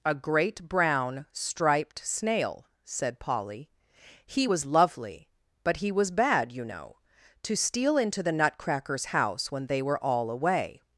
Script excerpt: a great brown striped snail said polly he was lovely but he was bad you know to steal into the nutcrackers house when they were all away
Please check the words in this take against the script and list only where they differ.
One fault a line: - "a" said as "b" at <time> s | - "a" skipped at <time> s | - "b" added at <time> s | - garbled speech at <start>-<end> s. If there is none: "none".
none